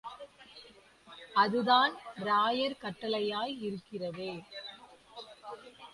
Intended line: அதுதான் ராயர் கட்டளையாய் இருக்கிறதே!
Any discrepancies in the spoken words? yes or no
no